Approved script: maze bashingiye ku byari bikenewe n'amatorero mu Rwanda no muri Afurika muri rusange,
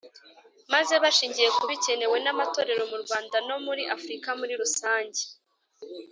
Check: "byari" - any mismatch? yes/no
yes